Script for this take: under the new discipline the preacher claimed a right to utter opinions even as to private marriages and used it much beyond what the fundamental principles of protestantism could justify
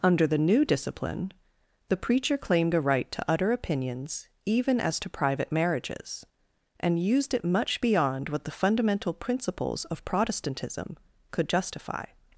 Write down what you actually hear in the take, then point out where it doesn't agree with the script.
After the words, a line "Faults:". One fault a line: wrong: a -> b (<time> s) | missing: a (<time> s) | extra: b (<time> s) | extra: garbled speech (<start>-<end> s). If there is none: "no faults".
under the new discipline the preacher claimed a right to utter opinions even as to private marriages and used it much beyond what the fundamental principles of protestantism could justify
Faults:
no faults